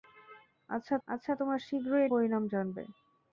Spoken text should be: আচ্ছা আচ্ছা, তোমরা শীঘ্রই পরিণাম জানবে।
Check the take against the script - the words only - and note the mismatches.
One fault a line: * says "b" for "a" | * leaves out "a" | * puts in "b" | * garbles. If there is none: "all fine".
all fine